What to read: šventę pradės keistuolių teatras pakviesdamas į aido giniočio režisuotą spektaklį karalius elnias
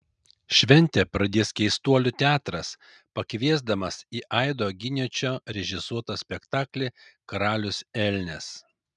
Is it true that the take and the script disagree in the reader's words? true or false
false